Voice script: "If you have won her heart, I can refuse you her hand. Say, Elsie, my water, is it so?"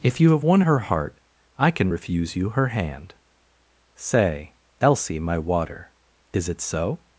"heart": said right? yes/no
yes